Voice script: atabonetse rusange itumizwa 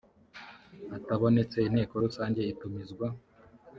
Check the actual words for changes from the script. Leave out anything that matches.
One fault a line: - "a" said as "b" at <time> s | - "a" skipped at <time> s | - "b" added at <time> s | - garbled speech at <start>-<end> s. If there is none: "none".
- "inteko" added at 1.7 s